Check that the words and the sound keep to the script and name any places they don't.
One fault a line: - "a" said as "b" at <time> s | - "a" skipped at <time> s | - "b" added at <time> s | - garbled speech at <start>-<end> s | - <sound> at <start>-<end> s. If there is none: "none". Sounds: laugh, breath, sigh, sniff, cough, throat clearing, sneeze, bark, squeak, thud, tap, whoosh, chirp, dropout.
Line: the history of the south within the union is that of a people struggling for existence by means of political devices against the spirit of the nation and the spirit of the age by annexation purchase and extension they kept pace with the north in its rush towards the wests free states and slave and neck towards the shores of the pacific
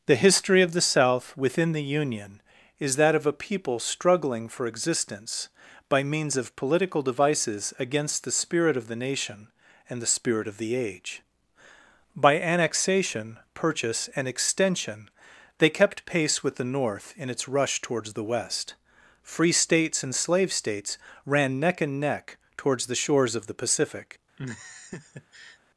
- "wests" said as "west" at 18.2 s
- "states ran neck" added at 20.5 s
- laugh at 24.4-25.6 s